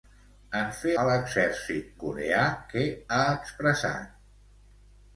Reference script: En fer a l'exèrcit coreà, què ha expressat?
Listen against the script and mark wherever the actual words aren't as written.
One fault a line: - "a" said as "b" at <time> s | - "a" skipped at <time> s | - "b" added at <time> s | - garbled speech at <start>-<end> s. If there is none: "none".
none